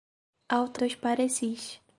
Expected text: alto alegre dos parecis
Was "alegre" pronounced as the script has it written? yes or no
no